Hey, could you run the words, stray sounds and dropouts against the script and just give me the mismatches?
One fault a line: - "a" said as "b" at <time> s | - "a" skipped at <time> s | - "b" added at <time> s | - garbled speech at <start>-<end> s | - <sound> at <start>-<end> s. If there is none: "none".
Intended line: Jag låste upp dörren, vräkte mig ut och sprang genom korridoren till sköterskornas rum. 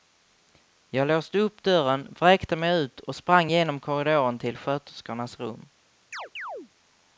- chirp at 6.1-6.7 s